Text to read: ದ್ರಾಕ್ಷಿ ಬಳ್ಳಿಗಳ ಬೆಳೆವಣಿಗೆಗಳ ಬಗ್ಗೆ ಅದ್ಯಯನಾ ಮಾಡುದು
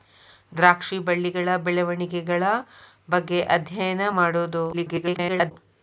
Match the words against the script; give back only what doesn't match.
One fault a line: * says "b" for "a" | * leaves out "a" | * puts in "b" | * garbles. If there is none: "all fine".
* garbles